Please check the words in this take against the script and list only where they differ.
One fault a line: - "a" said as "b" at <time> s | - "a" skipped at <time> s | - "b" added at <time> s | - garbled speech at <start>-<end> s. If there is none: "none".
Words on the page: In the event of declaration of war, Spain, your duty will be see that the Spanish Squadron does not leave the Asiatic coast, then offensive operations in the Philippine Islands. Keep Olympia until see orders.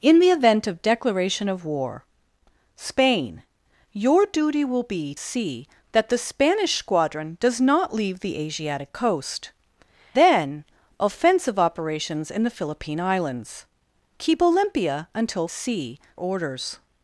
none